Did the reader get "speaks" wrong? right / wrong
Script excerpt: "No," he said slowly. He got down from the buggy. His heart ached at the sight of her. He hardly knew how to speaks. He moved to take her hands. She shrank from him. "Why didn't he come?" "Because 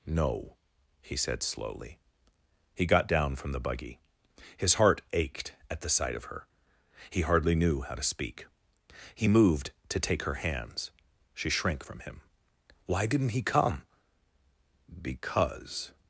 wrong